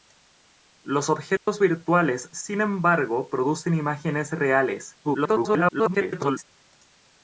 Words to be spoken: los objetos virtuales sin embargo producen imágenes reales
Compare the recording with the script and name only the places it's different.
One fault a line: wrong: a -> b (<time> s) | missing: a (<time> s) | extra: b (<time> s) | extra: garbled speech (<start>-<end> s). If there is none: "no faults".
extra: garbled speech (5.0-6.4 s)